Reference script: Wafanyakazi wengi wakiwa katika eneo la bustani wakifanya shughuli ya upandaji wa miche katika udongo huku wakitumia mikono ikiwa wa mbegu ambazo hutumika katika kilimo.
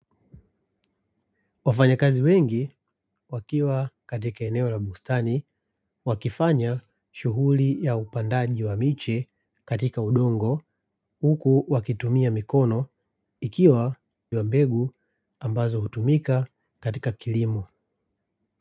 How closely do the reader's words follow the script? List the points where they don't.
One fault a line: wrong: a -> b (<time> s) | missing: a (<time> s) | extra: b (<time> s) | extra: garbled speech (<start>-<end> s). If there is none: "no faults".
no faults